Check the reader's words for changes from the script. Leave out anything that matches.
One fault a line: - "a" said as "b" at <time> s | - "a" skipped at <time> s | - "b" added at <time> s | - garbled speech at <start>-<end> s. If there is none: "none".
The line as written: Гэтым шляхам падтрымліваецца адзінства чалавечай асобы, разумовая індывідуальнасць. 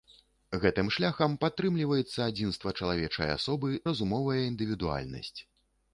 none